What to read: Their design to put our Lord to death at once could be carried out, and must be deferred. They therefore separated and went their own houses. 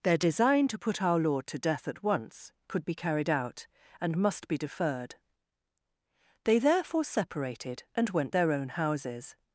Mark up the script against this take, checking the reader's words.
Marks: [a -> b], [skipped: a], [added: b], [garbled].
Their design to put our Lord to death at once could be carried out, and must be deferred. They therefore separated and went their own houses.